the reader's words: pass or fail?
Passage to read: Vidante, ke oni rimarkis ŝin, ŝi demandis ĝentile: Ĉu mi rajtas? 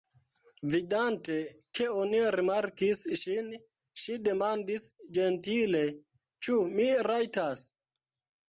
pass